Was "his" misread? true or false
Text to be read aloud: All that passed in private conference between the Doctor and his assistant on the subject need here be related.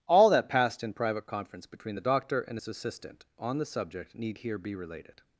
false